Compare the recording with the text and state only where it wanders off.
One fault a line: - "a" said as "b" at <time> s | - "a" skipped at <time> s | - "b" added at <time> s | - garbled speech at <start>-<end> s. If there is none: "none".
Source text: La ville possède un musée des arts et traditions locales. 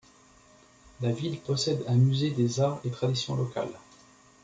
none